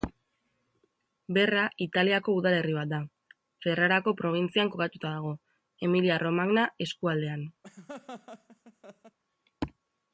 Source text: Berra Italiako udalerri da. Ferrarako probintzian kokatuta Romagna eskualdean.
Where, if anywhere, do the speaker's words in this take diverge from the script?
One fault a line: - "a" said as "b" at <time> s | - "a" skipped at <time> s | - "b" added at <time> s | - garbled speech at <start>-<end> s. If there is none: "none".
- "bat" added at 2.8 s
- "dago Emilia" added at 5.2 s